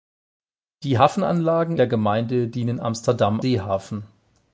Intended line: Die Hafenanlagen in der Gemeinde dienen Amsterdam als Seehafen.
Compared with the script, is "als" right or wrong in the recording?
wrong